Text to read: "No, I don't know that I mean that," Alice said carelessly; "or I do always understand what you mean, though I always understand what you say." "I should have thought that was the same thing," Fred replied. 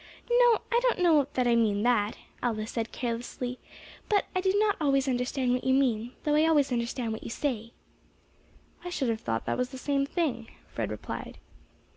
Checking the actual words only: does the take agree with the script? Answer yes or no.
no